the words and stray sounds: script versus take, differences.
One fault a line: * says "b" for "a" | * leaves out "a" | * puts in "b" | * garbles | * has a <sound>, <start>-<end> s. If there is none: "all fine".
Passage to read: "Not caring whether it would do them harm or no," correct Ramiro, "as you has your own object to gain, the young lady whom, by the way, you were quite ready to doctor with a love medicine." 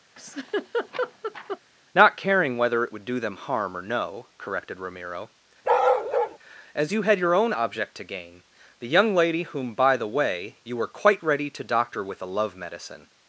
* has a laugh, 0.2-1.6 s
* says "corrected" for "correct"
* has a bark, 5.6-6.4 s
* says "had" for "has"